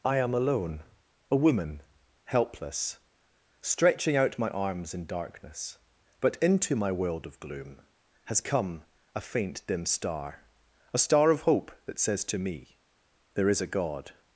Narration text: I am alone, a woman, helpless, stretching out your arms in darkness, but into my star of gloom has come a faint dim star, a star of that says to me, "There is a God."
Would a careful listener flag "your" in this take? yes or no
yes